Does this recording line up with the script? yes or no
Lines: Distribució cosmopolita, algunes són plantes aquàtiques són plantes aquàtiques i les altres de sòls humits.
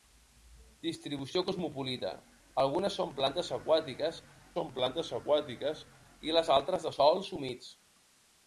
yes